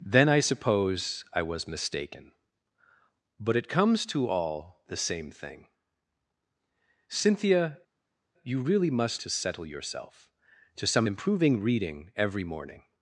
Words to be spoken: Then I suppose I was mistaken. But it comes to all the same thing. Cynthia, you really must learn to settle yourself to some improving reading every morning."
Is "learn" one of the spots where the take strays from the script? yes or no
yes